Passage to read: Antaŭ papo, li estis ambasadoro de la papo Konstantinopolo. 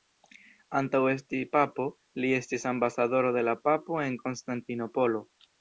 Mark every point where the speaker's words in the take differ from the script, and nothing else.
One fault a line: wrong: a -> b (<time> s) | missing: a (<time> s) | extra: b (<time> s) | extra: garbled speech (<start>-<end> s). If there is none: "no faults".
extra: esti (1.1 s)
extra: en (4.1 s)